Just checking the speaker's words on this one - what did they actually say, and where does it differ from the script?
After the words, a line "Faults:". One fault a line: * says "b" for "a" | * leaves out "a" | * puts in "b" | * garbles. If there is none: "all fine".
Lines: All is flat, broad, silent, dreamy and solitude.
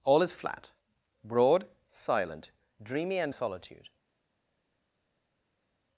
All is flat, broad, silent, dreamy and solitude.
Faults:
all fine